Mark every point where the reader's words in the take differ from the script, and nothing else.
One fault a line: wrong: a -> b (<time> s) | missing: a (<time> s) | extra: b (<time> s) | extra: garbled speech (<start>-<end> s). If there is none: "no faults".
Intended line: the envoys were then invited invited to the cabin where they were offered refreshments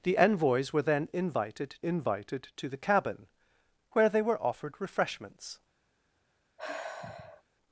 no faults